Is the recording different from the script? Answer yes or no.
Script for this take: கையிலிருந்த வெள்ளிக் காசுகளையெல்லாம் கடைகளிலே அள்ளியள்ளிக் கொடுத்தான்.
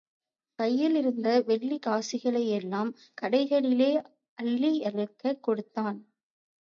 no